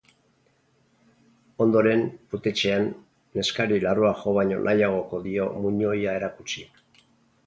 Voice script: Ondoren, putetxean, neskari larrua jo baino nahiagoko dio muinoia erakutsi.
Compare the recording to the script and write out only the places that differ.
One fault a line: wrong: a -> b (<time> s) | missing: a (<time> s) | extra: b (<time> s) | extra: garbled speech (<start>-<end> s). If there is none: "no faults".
no faults